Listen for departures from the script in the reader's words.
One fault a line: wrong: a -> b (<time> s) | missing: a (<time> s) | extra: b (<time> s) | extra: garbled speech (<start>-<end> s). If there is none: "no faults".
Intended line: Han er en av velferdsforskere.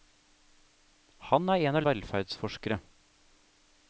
no faults